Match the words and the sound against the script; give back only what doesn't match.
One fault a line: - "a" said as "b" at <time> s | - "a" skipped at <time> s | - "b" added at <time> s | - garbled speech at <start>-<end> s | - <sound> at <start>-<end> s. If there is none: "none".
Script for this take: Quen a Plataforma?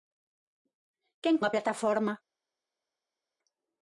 none